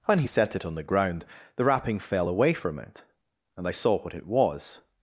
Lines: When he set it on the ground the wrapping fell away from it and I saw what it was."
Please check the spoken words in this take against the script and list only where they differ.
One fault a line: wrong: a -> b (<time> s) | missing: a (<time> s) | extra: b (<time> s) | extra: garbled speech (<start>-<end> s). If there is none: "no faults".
no faults